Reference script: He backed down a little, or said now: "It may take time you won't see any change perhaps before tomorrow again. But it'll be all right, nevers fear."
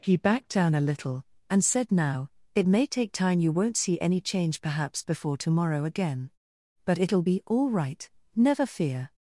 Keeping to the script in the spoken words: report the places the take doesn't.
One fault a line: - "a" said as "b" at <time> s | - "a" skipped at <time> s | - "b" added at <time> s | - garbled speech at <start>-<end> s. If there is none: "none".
- "or" said as "and" at 1.5 s
- "nevers" said as "never" at 8.3 s